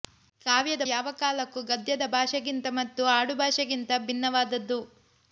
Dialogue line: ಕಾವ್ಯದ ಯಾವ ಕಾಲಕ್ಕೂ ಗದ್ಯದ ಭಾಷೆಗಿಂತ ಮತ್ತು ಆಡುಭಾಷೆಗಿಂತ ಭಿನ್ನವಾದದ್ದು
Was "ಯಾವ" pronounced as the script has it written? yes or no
yes